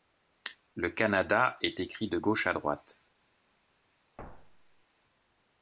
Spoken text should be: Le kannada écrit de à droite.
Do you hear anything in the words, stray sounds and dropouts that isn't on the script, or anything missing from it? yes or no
yes